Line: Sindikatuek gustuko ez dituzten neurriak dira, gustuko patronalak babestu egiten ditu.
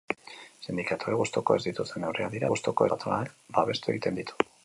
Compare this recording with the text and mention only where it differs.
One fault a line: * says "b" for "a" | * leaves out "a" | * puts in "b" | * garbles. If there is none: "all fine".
all fine